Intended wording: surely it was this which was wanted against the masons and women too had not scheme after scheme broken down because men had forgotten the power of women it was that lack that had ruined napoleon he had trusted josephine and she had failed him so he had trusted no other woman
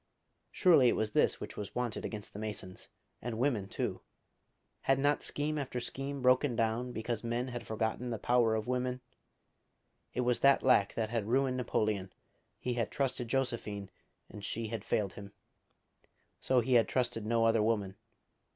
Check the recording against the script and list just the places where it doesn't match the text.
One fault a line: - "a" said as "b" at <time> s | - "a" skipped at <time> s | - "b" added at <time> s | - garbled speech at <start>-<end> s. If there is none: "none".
none